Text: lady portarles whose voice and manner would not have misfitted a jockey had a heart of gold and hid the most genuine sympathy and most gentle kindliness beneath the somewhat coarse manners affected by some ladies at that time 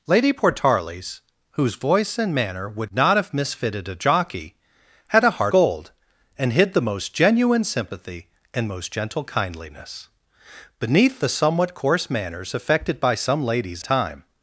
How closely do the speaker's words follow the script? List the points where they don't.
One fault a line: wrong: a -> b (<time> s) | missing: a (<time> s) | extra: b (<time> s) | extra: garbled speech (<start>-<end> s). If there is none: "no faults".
missing: of (5.5 s)
missing: at that (13.8 s)